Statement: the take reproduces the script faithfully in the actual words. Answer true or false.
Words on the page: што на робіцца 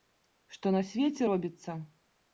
false